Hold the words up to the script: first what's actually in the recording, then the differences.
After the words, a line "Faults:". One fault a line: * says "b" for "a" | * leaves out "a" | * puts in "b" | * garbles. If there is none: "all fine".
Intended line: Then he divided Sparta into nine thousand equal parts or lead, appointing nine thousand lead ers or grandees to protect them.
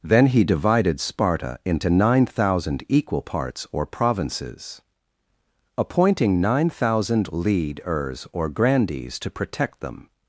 Then he divided Sparta into nine thousand equal parts or provinces, appointing nine thousand lead ers or grandees to protect them.
Faults:
* says "provinces" for "lead"